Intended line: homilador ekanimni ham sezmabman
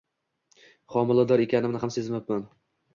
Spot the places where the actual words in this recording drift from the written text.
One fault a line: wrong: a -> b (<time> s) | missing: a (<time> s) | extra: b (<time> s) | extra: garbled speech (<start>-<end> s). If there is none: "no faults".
no faults